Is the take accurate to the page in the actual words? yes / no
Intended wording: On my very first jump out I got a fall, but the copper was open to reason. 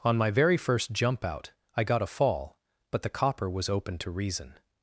yes